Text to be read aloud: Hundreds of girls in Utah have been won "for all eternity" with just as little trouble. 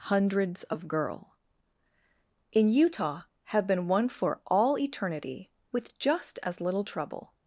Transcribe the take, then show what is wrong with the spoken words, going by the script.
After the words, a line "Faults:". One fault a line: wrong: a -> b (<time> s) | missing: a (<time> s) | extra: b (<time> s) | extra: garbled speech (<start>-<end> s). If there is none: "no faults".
Hundreds of girl in Utah have been won "for all eternity" with just as little trouble.
Faults:
wrong: girls -> girl (0.9 s)